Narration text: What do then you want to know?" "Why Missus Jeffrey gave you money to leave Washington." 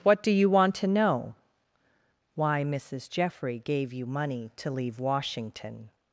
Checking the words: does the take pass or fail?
fail